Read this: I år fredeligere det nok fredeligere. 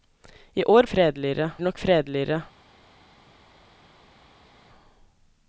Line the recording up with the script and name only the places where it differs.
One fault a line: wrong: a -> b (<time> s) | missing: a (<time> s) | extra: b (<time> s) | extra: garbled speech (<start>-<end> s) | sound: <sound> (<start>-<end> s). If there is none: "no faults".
no faults